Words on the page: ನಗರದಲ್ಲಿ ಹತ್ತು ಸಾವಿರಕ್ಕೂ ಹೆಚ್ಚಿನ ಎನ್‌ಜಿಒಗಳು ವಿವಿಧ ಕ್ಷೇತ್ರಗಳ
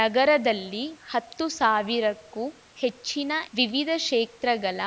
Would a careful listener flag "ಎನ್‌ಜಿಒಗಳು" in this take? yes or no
yes